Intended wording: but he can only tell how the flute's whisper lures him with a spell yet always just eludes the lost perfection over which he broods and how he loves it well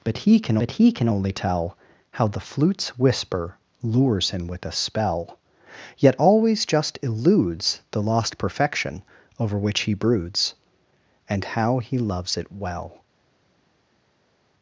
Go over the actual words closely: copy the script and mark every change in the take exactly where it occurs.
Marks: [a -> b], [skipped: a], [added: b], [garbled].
but he can [added: but he can] only tell how the flute's whisper lures him with a spell yet always just eludes the lost perfection over which he broods and how he loves it well